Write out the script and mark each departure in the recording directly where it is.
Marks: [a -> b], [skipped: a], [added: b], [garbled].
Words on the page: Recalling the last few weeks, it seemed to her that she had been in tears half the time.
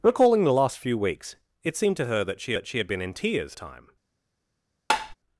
Recalling the last few weeks, it seemed to her that she [added: that she] had been in tears [skipped: half the] time.